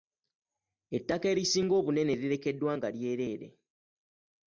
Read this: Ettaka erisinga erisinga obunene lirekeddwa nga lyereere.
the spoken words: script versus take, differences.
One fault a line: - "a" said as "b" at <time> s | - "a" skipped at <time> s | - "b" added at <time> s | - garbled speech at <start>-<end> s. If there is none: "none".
- "erisinga" skipped at 1.7 s